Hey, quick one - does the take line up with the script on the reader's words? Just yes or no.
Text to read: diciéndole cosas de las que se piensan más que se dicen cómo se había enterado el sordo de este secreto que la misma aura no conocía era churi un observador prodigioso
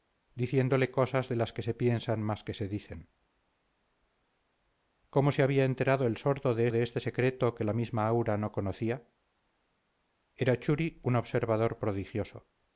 no